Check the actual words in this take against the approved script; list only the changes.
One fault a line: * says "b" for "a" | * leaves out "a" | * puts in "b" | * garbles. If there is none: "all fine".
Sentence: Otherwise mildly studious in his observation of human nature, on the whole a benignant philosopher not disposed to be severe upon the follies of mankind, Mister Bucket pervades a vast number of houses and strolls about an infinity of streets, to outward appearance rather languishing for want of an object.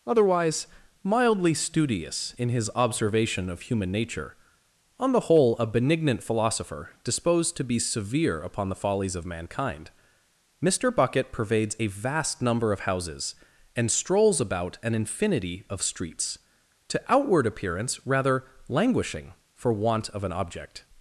* leaves out "not"